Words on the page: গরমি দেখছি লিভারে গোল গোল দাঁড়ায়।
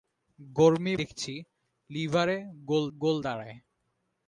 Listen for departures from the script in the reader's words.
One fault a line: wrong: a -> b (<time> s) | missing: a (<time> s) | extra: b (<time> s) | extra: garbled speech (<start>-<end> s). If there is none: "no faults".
no faults